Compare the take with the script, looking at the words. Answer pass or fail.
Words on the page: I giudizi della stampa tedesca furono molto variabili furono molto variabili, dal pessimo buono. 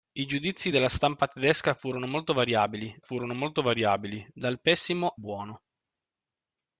pass